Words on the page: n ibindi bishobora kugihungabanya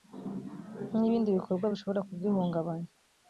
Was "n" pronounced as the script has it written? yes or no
yes